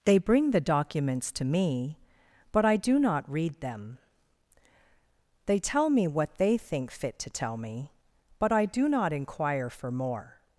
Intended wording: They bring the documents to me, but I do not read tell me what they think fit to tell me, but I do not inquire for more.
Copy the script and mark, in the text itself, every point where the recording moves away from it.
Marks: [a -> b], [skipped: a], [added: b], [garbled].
They bring the documents to me, but I do not read [added: them they] tell me what they think fit to tell me, but I do not inquire for more.